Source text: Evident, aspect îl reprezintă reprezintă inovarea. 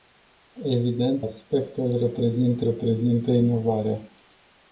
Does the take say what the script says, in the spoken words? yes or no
yes